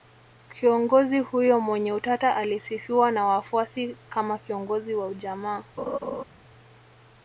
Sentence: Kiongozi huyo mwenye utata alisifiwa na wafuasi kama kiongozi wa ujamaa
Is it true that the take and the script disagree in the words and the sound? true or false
true